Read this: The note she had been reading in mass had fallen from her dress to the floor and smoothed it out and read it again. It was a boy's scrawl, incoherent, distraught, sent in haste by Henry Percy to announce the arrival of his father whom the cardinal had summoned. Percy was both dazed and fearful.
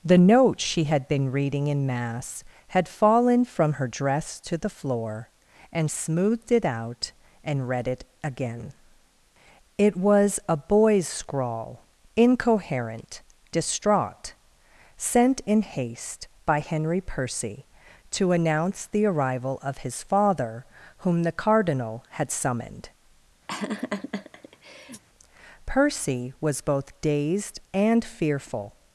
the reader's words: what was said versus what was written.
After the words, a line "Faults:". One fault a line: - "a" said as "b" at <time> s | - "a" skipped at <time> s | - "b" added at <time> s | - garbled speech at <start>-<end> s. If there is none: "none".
The note she had been reading in mass had fallen from her dress to the floor and smoothed it out and read it again. It was a boy's scrawl, incoherent, distraught, sent in haste by Henry Percy to announce the arrival of his father whom the cardinal had summoned. Percy was both dazed and fearful.
Faults:
none